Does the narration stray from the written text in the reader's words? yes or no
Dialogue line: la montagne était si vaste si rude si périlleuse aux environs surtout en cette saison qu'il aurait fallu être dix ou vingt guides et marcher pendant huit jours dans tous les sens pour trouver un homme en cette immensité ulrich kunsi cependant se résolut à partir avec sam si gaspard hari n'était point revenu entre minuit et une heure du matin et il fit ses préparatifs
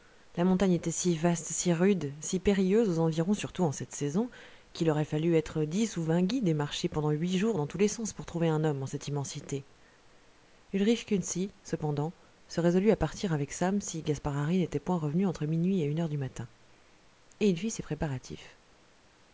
no